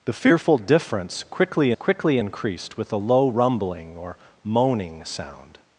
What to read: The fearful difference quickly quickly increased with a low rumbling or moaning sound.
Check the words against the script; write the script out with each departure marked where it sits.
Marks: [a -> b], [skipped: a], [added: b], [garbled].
The fearful difference quickly quickly increased with a low rumbling or moaning sound.